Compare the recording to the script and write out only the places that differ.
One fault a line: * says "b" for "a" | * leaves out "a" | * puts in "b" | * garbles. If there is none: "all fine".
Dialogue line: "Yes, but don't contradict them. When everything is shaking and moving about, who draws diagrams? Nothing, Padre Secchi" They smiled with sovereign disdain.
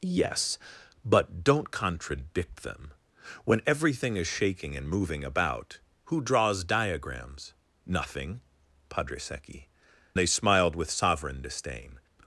all fine